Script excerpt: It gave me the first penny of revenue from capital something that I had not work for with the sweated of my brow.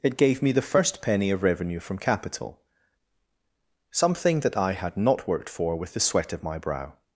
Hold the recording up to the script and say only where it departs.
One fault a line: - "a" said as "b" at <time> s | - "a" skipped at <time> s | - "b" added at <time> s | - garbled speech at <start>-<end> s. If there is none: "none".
- "work" said as "worked" at 5.3 s
- "sweated" said as "sweat" at 6.0 s